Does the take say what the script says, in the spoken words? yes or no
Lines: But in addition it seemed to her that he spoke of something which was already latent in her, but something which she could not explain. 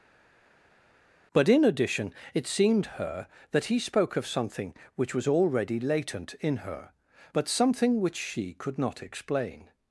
no